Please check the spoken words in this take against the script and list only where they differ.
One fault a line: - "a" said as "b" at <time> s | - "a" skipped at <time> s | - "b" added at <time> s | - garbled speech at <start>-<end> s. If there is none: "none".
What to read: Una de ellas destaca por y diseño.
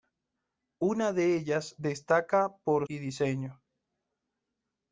none